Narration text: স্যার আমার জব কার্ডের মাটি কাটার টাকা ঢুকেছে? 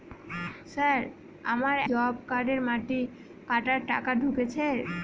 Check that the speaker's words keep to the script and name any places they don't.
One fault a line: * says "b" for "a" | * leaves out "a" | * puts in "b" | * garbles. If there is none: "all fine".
all fine